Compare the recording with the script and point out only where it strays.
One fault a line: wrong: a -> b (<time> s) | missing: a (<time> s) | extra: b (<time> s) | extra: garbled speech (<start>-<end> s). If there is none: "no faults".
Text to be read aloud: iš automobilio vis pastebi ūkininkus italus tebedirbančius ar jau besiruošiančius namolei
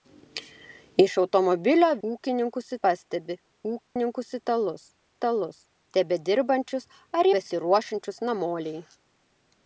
wrong: vis -> ūkininkus (2.1 s)
extra: italus (5.1 s)
missing: jau (7.3 s)